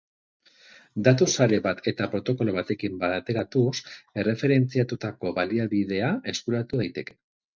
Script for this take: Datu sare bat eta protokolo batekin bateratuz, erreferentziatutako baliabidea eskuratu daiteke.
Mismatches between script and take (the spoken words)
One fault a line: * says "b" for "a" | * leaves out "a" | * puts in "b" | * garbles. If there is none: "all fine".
all fine